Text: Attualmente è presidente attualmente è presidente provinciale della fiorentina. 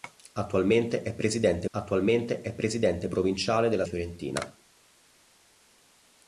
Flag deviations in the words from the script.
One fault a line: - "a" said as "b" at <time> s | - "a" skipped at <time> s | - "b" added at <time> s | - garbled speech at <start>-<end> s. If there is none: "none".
none